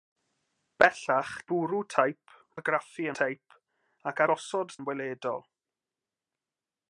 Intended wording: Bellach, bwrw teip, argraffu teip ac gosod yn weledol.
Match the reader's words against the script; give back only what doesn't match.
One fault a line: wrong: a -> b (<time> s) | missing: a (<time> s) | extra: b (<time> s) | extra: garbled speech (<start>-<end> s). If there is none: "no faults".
no faults